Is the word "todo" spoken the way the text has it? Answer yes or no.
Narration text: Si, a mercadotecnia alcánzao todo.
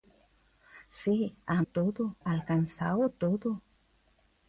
yes